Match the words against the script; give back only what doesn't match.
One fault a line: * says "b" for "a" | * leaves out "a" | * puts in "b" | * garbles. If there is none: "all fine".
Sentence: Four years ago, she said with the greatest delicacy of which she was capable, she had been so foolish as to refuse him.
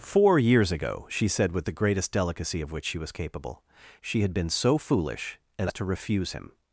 all fine